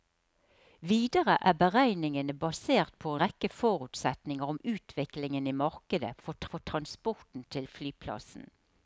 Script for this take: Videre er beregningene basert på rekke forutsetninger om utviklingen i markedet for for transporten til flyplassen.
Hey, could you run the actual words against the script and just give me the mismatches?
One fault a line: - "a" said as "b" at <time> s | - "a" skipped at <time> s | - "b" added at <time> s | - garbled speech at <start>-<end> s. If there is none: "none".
none